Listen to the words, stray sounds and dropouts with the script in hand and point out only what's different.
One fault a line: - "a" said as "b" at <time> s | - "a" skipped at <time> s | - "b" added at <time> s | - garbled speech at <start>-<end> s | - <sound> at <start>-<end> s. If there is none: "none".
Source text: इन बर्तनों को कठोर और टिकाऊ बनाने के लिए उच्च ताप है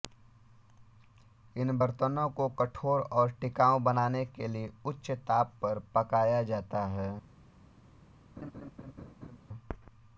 - "पर पकाया जाता" added at 5.6 s
- laugh at 8.4-9.4 s